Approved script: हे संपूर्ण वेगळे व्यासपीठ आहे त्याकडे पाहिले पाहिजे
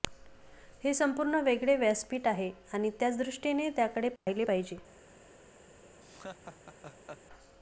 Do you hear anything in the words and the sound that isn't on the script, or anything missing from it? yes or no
yes